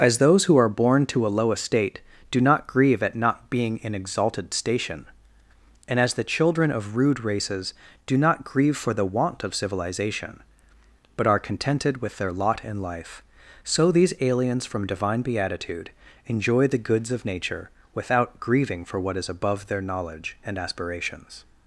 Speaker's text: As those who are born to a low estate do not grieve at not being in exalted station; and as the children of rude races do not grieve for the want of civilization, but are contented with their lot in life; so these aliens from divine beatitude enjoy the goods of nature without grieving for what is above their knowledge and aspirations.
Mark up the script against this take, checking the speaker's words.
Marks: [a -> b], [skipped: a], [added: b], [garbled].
As those who are born to a low estate do not grieve at not being in exalted station; and as the children of rude races do not grieve for the want of civilization, but are contented with their lot in life; so these aliens from divine beatitude enjoy the goods of nature without grieving for what is above their knowledge and aspirations.